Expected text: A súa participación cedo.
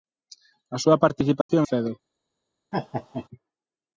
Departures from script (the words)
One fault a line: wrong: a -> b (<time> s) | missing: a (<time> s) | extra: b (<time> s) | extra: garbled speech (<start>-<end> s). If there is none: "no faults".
no faults